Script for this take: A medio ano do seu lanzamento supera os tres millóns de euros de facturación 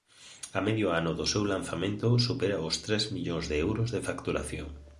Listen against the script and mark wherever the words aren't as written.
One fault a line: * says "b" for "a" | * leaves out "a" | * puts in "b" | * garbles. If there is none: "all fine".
all fine